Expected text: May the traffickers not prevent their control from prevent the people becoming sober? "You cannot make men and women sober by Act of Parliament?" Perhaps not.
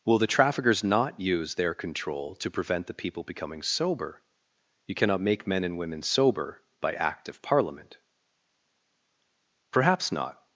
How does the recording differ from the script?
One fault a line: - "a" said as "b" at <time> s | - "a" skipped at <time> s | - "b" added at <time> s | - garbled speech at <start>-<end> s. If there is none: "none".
- "May" said as "Will" at 0.0 s
- "prevent" said as "use" at 1.2 s
- "from" said as "to" at 2.4 s